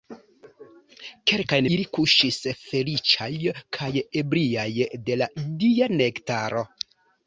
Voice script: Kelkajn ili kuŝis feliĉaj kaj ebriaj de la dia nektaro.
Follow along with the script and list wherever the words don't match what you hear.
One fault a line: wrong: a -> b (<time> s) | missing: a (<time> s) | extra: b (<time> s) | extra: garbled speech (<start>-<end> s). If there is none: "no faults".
no faults